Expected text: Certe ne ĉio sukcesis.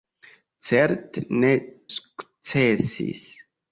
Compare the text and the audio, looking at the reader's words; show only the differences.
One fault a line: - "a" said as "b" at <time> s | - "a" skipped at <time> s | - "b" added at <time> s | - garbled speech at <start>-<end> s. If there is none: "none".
- "ĉio" skipped at 1.5 s